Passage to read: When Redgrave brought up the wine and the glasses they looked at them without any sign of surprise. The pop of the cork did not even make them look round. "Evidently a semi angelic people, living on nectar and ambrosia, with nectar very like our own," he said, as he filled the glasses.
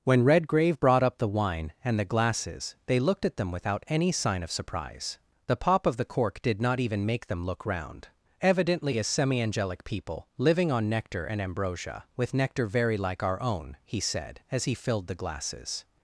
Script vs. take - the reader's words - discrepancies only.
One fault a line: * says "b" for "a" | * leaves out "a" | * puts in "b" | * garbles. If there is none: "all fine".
all fine